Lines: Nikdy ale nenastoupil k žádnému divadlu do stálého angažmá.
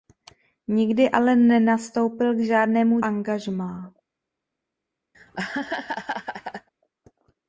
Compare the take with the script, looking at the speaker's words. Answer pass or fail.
fail